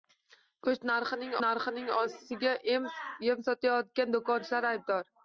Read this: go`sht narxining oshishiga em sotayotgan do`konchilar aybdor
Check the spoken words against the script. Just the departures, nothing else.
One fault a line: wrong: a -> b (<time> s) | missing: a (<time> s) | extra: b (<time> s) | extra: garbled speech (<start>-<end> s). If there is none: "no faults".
extra: narxining (1.4 s)